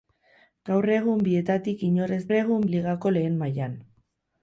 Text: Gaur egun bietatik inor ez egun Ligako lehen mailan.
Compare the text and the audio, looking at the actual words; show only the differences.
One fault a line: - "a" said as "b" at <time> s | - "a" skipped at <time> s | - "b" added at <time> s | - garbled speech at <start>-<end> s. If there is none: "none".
none